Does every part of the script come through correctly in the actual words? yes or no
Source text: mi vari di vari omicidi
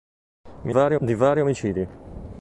yes